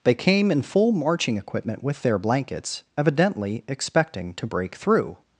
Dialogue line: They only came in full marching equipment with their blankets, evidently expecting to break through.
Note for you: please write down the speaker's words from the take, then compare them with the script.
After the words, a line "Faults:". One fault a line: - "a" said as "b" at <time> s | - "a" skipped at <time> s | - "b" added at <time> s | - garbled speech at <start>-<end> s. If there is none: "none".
They came in full marching equipment with their blankets, evidently expecting to break through.
Faults:
- "only" skipped at 0.1 s